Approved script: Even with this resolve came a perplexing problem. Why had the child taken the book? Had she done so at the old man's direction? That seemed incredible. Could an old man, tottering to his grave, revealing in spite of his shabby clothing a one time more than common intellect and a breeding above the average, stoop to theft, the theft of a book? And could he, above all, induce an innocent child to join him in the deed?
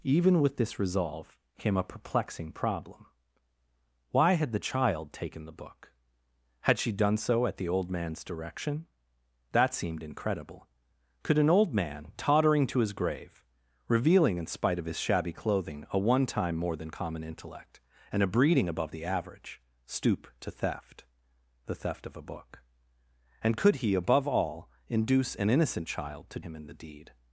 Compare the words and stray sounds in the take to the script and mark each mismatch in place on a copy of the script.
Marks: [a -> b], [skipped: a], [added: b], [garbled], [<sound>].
Even with this resolve came a perplexing problem. Why had the child taken the book? Had she done so at the old man's direction? That seemed incredible. Could an old man, tottering to his grave, revealing in spite of his shabby clothing a one time more than common intellect and a breeding above the average, stoop to theft, the theft of a book? And could he, above all, induce an innocent child to [skipped: join] him in the deed?